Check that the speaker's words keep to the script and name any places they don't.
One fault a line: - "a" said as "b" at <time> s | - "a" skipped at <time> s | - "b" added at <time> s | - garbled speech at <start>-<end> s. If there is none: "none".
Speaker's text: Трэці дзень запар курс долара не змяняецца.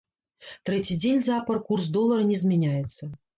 none